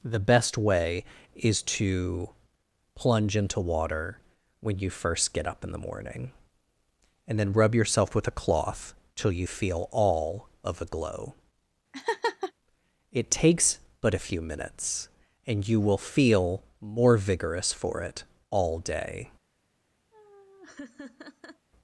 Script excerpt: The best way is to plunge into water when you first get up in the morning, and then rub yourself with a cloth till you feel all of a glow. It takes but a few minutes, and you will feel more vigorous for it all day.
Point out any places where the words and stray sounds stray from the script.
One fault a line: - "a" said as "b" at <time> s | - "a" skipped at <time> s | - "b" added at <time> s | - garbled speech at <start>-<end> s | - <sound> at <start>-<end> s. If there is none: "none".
- laugh at 11.9-12.5 s
- laugh at 20.1-21.7 s